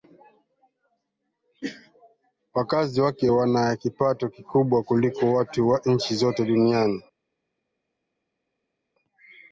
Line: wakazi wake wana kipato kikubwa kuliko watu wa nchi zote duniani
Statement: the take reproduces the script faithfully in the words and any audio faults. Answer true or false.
true